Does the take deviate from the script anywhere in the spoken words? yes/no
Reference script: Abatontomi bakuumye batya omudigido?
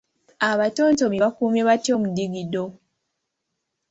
no